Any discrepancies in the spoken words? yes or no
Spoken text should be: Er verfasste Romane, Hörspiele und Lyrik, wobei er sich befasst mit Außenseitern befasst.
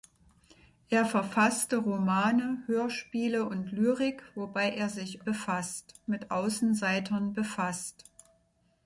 no